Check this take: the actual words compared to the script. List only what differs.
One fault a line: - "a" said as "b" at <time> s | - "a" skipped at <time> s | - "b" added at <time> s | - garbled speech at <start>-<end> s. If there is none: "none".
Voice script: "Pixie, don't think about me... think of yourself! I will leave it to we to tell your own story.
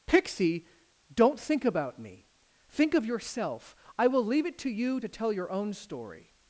- "we" said as "you" at 4.7 s